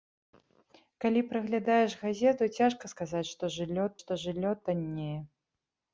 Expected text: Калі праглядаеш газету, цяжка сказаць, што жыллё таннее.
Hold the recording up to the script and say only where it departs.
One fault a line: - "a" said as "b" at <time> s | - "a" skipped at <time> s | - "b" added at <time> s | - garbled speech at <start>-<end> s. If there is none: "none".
- "што жыллё" added at 4.0 s